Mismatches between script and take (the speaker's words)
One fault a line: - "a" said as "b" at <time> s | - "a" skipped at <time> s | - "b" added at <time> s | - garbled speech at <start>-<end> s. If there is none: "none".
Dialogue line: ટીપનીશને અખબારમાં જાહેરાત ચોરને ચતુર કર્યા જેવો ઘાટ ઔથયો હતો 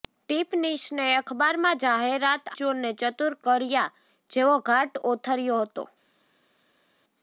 none